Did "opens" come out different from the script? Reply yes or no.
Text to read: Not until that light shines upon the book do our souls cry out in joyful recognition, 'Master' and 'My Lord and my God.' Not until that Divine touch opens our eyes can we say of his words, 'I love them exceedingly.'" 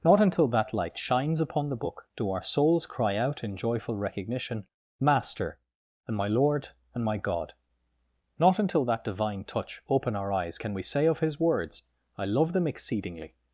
yes